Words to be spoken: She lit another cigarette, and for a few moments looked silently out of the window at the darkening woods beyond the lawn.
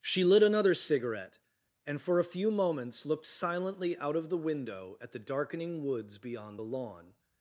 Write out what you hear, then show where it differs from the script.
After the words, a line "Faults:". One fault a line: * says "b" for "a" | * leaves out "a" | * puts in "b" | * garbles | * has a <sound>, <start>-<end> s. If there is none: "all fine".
She lit another cigarette, and for a few moments looked silently out of the window at the darkening woods beyond the lawn.
Faults:
all fine